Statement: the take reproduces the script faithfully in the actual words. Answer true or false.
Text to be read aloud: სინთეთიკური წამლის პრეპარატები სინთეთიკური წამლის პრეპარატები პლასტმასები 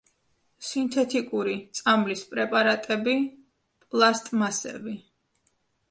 false